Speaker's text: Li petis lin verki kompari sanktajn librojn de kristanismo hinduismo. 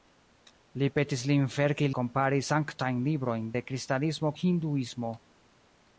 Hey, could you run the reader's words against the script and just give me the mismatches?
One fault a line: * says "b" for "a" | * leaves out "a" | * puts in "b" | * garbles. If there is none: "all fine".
all fine